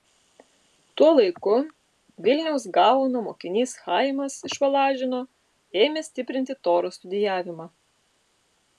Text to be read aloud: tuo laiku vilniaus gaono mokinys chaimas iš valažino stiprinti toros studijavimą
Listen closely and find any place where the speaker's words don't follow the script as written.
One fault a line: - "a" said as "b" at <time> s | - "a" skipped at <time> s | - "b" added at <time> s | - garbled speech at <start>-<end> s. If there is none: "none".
- "ėmė" added at 5.8 s